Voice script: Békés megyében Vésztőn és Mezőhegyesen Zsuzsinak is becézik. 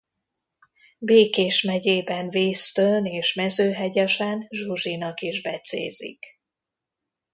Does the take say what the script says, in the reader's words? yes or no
yes